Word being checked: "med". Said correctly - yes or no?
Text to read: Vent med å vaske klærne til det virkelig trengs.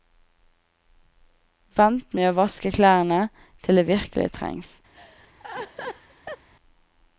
yes